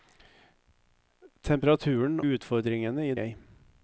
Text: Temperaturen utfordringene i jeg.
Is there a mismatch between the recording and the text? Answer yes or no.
no